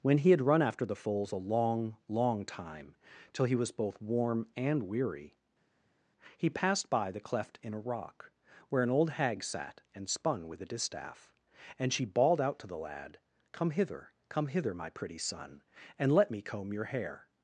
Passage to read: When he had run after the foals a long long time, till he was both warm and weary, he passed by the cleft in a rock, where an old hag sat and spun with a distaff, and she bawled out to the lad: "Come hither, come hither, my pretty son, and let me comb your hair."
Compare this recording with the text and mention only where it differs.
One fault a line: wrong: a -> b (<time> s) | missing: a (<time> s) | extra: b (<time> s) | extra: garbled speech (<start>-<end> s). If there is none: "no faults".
no faults